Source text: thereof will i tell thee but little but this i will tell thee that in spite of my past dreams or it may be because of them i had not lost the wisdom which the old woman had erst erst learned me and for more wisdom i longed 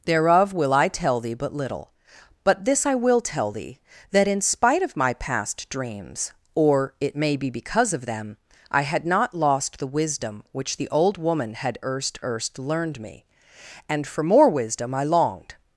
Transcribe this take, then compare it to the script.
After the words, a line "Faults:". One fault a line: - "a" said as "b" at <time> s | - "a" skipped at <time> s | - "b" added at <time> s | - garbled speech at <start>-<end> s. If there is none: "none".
thereof will i tell thee but little but this i will tell thee that in spite of my past dreams or it may be because of them i had not lost the wisdom which the old woman had erst erst learned me and for more wisdom i longed
Faults:
none